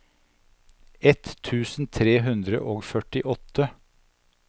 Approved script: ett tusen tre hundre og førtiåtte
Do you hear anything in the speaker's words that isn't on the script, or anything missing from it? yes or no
no